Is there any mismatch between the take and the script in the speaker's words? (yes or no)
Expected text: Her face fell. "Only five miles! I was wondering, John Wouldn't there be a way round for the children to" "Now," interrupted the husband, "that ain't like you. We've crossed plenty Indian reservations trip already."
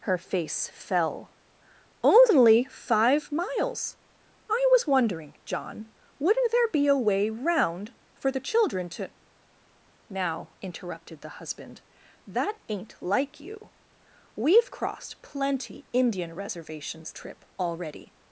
no